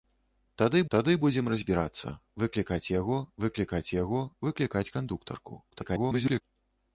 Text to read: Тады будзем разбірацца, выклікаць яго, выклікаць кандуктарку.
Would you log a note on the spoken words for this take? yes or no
yes